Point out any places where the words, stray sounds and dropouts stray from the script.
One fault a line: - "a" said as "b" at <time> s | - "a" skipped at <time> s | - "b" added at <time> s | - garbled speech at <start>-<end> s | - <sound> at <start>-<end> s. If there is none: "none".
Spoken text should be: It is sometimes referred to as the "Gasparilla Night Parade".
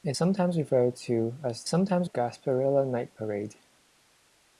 - "is" skipped at 0.2 s
- "the" said as "sometimes" at 1.7 s